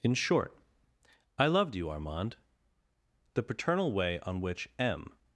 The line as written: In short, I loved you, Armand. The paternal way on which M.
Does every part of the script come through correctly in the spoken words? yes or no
yes